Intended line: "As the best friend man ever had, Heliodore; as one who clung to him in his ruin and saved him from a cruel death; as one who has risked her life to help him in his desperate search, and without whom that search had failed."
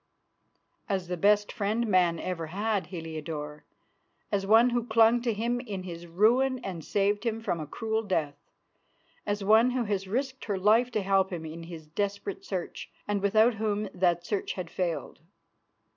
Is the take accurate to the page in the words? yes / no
yes